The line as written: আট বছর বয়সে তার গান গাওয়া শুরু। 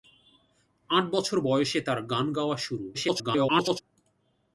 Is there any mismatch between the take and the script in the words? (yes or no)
yes